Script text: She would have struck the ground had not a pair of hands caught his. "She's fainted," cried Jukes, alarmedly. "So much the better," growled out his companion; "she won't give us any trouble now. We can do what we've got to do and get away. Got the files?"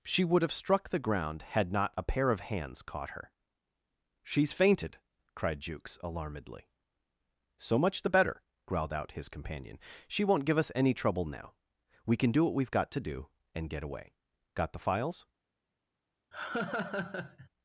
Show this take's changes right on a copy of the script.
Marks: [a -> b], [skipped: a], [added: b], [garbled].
She would have struck the ground had not a pair of hands caught [his. -> her] "She's fainted," cried Jukes, alarmedly. "So much the better," growled out his companion; "she won't give us any trouble now. We can do what we've got to do and get away. Got the files?"